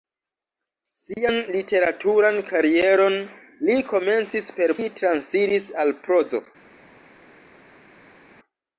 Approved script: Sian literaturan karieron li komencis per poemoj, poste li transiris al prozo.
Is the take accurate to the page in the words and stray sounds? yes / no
no